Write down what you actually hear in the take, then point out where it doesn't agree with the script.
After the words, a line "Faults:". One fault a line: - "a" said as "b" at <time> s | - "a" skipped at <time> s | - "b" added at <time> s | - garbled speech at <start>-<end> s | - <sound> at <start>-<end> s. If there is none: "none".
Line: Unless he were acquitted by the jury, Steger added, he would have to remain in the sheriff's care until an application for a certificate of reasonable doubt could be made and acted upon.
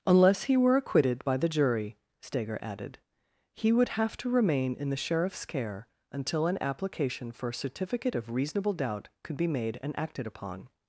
Unless he were acquitted by the jury, Steger added, he would have to remain in the sheriff's care until an application for a certificate of reasonable doubt could be made and acted upon.
Faults:
none